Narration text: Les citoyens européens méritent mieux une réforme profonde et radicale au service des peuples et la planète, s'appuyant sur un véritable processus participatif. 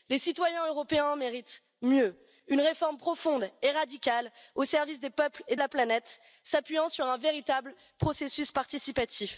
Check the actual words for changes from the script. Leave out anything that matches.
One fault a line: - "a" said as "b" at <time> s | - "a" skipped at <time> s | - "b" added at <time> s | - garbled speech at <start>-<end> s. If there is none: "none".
none